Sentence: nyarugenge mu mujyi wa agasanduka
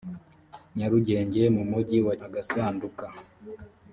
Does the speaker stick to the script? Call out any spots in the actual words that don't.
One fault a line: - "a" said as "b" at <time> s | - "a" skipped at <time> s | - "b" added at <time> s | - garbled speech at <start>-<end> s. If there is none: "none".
none